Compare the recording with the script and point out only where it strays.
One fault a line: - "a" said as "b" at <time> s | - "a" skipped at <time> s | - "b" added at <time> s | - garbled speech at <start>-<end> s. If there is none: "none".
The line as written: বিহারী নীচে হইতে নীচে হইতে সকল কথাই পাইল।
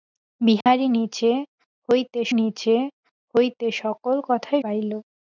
none